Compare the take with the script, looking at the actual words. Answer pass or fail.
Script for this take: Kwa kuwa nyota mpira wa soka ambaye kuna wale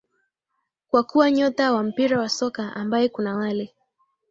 fail